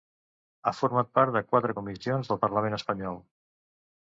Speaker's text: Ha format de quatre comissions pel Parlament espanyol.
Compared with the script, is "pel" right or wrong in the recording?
wrong